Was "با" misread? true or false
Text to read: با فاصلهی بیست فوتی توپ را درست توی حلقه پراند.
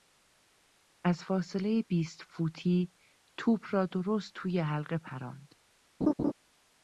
true